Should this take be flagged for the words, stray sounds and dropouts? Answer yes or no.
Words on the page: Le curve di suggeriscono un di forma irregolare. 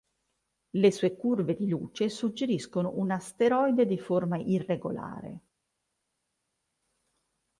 yes